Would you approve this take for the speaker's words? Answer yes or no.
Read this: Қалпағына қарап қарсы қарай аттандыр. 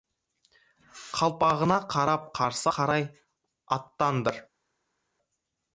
yes